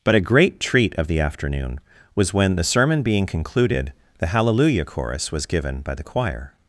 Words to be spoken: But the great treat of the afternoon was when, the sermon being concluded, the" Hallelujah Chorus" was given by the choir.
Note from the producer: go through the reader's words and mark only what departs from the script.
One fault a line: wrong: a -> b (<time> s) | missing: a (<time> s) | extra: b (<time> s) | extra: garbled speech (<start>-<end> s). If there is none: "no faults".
wrong: the -> a (0.1 s)